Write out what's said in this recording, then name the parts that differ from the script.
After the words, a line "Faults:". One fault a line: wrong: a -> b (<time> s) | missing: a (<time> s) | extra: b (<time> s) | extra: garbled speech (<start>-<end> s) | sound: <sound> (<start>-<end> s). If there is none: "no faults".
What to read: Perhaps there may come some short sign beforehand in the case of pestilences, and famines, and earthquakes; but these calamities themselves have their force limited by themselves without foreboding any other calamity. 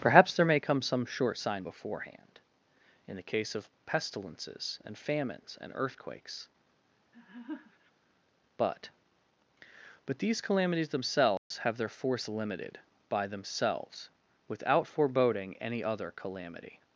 Perhaps there may come some short sign beforehand in the case of pestilences, and famines, and earthquakes; but but these calamities themselves have their force limited by themselves without foreboding any other calamity.
Faults:
sound: laugh (7.1-7.9 s)
extra: but (10.1 s)
sound: dropout (11.4-11.5 s)